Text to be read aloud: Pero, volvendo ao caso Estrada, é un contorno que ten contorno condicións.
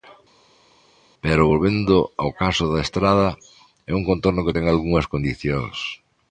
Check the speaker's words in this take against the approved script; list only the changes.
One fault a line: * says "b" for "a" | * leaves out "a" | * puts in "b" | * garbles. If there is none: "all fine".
* puts in "da"
* says "algunhas" for "contorno"